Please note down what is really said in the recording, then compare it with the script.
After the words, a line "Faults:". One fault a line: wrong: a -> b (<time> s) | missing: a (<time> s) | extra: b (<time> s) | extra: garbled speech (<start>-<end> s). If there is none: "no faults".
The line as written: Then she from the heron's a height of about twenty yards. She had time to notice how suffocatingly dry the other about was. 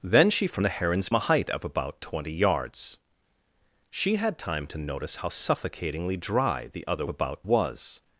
Then she from the heron's a height of about twenty yards. She had time to notice how suffocatingly dry the other about was.
Faults:
no faults